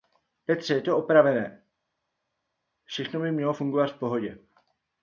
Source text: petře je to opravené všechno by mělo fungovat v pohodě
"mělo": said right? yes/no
yes